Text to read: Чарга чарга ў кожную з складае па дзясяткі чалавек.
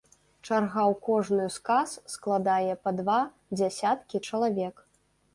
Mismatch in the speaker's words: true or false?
true